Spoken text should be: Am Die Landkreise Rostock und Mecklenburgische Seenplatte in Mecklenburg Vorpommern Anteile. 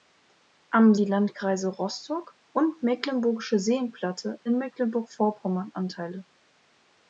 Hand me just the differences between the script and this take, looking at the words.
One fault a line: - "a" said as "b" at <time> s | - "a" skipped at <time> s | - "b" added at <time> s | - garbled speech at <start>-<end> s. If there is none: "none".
none